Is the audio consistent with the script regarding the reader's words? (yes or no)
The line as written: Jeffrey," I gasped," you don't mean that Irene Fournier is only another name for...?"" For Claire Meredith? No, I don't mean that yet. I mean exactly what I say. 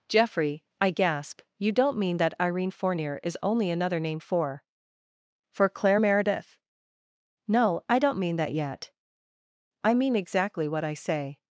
no